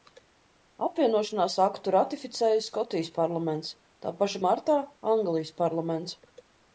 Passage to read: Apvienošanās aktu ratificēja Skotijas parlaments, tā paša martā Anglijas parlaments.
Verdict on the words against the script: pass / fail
pass